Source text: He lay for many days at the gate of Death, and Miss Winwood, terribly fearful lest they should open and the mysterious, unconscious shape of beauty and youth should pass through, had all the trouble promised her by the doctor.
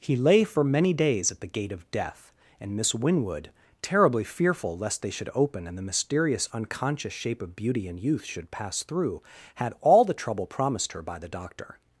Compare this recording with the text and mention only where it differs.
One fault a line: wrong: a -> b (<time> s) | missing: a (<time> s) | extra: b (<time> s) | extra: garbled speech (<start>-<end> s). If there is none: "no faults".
no faults